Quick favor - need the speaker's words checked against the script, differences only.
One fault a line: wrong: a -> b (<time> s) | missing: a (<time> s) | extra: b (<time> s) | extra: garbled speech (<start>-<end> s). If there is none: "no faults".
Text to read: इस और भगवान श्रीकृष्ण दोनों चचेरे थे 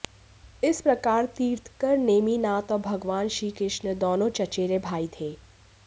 extra: प्रकार तीर्थंकर नेमिनाथ (0.8 s)
extra: भाई (4.8 s)